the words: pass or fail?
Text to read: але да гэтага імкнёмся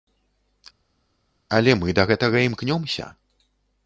fail